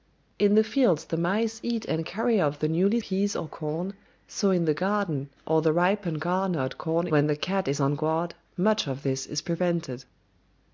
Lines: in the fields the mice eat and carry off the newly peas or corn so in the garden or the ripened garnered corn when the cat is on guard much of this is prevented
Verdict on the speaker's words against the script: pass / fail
pass